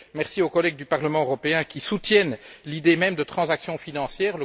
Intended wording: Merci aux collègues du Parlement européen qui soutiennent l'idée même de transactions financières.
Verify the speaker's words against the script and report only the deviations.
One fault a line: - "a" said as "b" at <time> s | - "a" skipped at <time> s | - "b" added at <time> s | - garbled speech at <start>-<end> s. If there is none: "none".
none